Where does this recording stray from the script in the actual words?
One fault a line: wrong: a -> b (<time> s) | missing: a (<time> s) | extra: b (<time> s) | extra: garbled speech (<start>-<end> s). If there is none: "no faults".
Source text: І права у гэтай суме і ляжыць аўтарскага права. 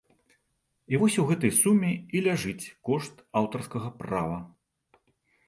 wrong: права -> вось (1.0 s)
extra: кошт (2.9 s)